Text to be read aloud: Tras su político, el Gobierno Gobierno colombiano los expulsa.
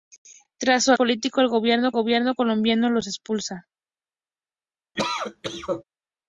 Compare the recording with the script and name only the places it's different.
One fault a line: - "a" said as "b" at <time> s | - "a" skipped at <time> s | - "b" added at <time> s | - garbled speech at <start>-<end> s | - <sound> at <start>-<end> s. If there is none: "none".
- cough at 5.0-5.8 s